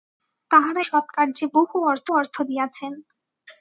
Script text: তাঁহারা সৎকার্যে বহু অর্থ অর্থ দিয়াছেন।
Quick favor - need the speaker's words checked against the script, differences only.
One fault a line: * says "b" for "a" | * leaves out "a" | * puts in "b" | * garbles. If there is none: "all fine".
all fine